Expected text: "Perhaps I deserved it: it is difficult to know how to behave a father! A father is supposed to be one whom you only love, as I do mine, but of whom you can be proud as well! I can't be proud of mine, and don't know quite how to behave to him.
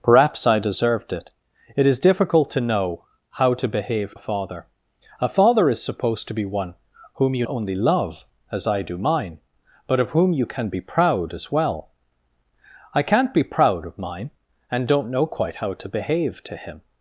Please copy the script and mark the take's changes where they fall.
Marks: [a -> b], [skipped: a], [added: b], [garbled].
"Perhaps I deserved it: it is difficult to know how to behave a father! A father is supposed to be one whom you only love, as I do mine, but of whom you can be proud as well! I can't be proud of mine, and don't know quite how to behave to him.